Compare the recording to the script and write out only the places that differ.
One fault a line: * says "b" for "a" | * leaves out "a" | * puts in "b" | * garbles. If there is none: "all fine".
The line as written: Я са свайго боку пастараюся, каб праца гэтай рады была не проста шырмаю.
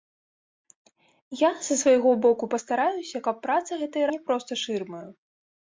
* leaves out "рады была"